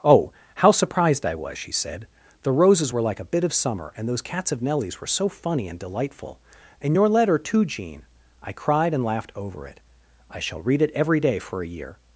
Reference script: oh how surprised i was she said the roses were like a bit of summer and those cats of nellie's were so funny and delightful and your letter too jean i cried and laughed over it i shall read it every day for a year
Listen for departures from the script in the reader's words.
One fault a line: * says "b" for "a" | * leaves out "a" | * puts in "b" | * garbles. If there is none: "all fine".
all fine